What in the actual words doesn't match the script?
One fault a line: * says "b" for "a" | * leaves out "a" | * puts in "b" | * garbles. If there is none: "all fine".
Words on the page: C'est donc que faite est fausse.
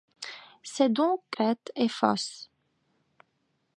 all fine